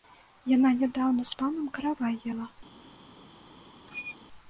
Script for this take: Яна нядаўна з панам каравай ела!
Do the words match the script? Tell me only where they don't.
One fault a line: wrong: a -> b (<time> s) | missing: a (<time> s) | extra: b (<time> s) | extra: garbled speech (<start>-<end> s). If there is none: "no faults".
no faults